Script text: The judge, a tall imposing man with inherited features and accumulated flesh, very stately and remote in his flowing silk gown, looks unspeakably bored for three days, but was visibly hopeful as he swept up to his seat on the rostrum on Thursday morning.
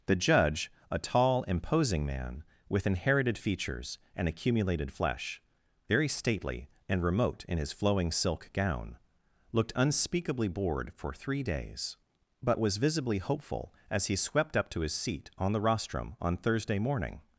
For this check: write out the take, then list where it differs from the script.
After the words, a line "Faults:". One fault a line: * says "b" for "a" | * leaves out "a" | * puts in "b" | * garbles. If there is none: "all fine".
The judge, a tall imposing man with inherited features and accumulated flesh, very stately and remote in his flowing silk gown, looked unspeakably bored for three days, but was visibly hopeful as he swept up to his seat on the rostrum on Thursday morning.
Faults:
* says "looked" for "looks"